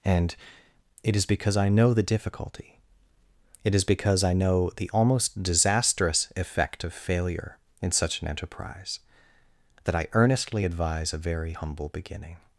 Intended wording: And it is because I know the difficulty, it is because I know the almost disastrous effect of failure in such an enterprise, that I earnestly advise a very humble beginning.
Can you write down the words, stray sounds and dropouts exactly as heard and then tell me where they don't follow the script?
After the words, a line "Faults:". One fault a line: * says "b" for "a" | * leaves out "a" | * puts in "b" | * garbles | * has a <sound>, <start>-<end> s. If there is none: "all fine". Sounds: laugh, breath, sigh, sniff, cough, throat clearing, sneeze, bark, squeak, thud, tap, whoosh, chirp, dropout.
And it is because I know the difficulty, it is because I know the almost disastrous effect of failure in such an enterprise, that I earnestly advise a very humble beginning.
Faults:
all fine